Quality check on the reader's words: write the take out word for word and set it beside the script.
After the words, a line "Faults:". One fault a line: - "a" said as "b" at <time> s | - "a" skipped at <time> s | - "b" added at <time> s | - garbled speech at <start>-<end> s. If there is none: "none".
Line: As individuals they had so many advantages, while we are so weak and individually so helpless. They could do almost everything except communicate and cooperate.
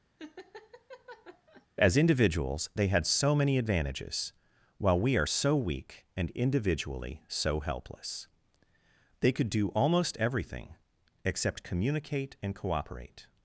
As individuals they had so many advantages, while we are so weak and individually so helpless. They could do almost everything except communicate and cooperate.
Faults:
none